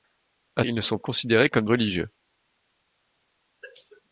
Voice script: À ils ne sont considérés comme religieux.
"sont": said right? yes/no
yes